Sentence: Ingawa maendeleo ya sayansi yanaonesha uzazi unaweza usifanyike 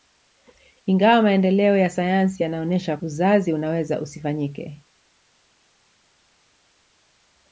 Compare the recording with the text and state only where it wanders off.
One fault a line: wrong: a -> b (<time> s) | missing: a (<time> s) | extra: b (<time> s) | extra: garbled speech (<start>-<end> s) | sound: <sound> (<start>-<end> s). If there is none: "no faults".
no faults